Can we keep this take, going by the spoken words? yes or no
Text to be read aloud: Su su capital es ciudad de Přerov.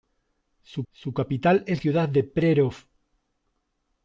yes